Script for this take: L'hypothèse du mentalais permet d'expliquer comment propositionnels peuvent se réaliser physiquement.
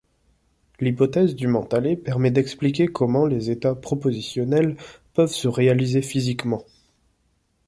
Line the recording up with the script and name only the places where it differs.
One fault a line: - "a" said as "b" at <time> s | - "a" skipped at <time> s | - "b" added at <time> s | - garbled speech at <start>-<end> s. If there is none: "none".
- "les états" added at 3.3 s